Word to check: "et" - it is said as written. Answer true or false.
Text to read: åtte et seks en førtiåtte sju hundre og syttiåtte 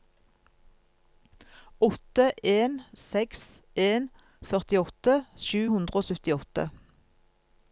false